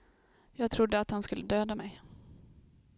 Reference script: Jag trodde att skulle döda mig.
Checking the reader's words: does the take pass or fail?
fail